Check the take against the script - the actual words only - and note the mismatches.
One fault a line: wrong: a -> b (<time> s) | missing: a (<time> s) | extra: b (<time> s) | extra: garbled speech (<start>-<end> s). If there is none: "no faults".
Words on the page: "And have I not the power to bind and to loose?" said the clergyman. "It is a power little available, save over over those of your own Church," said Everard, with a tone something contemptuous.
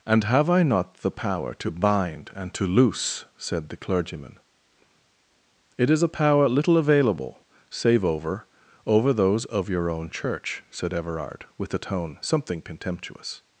no faults